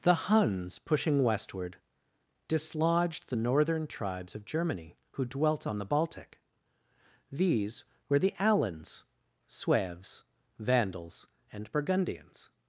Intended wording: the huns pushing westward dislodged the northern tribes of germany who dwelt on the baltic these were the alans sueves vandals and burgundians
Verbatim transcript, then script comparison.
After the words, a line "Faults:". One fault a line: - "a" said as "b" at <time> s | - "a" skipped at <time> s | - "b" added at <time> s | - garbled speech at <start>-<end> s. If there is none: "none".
the huns pushing westward dislodged the northern tribes of germany who dwelt on the baltic these were the alans sueves vandals and burgundians
Faults:
none